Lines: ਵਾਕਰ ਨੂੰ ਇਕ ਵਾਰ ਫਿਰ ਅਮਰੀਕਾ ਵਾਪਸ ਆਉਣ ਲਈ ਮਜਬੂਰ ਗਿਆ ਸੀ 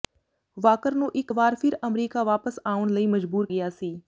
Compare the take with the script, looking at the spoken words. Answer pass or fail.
pass